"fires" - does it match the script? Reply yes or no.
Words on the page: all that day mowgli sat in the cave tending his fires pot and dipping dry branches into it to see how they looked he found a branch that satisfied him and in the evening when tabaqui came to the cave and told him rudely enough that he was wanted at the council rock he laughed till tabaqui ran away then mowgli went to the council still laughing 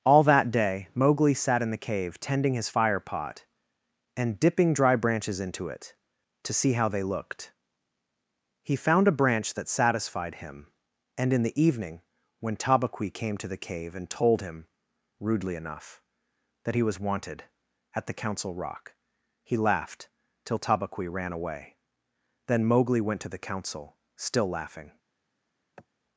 no